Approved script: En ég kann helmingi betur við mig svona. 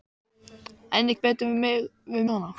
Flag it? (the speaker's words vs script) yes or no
yes